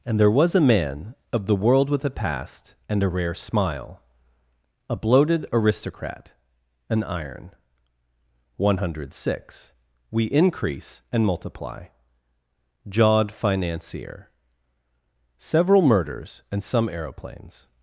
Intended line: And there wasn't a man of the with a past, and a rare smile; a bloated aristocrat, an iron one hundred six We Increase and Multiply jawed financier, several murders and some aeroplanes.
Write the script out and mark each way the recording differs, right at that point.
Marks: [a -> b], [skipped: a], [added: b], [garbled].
And there [wasn't -> was] a man of the [added: world] with a past, and a rare smile; a bloated aristocrat, an iron one hundred six We Increase and Multiply jawed financier, several murders and some aeroplanes.